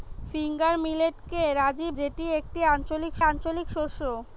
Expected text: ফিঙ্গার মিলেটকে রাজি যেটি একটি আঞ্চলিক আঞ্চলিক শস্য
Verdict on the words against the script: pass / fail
pass